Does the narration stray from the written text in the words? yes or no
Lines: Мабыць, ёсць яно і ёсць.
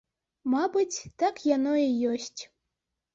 yes